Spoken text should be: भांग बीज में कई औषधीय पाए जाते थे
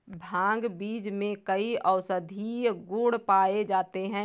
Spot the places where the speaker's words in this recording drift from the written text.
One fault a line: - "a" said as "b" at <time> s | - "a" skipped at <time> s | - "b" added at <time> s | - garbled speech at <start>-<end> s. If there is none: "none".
- "गुण" added at 2.9 s
- "थे" said as "हैं" at 4.0 s